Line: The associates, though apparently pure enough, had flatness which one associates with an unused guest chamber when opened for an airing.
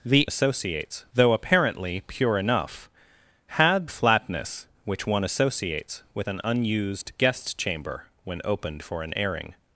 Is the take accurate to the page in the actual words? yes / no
yes